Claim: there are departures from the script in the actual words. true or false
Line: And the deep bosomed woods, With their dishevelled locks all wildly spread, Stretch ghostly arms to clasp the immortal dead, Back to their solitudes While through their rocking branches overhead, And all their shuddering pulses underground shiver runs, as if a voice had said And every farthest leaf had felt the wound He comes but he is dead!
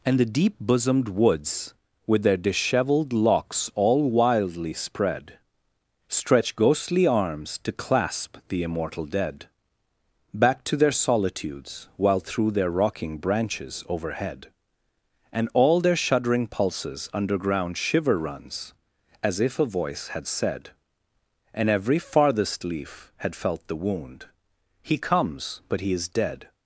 false